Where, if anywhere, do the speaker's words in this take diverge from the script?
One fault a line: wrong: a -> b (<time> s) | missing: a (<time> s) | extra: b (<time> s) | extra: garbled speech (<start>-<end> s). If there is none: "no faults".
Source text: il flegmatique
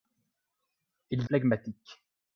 no faults